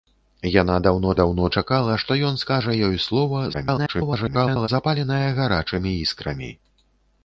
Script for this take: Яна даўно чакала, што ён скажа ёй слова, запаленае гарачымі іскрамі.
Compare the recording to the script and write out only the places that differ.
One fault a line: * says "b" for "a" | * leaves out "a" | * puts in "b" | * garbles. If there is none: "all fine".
* puts in "даўно"
* garbles